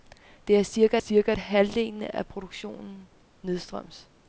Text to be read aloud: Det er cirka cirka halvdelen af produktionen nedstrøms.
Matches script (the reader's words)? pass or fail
pass